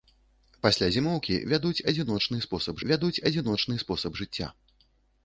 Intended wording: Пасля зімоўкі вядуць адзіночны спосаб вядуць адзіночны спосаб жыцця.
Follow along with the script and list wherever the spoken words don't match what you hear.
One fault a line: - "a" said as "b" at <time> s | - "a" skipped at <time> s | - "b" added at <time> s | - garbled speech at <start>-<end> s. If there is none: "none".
none